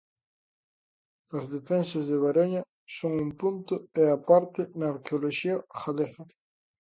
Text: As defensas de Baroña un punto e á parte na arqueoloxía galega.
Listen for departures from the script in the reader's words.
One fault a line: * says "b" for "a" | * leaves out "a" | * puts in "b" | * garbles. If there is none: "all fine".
* puts in "son"